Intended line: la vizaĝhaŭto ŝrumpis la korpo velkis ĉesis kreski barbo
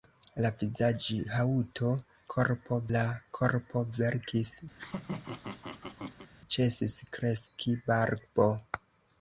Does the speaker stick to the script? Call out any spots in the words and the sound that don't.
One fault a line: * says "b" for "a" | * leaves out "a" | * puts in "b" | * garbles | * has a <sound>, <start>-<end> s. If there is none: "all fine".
* says "korpo" for "ŝrumpis"
* has a laugh, 4.7-6.3 s